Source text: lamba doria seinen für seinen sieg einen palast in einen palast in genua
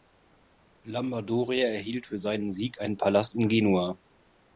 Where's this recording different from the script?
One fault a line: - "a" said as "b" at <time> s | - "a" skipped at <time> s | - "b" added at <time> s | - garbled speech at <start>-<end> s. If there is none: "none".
- "seinen" said as "erhielt" at 1.7 s
- "einen palast in" skipped at 3.5 s